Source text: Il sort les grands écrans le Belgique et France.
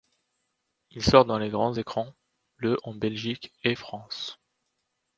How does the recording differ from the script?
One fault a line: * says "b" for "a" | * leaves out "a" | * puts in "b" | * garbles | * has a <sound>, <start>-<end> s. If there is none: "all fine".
* puts in "dans"
* puts in "en"